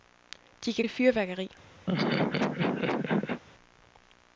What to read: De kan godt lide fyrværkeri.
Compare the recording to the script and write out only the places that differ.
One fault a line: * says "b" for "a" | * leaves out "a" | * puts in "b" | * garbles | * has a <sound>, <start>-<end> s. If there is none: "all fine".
* leaves out "godt"
* has a laugh, 1.9-3.4 s